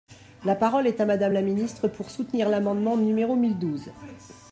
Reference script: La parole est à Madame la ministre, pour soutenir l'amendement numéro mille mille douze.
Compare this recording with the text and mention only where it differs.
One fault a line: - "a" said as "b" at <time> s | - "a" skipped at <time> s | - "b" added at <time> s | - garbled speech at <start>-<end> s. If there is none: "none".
- "mille" skipped at 3.6 s